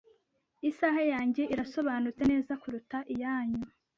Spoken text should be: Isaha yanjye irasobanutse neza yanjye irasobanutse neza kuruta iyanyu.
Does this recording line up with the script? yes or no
no